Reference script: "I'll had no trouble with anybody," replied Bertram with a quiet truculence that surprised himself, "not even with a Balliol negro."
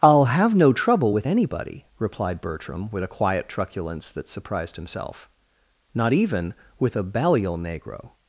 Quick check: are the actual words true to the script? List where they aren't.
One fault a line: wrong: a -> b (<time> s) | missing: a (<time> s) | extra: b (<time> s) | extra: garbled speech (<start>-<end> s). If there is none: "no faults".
wrong: had -> have (0.2 s)